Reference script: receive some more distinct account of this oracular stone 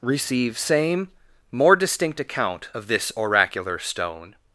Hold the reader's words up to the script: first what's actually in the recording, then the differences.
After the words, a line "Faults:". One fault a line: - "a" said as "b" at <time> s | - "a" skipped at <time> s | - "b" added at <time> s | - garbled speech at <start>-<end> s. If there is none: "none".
receive same more distinct account of this oracular stone
Faults:
- "some" said as "same" at 0.6 s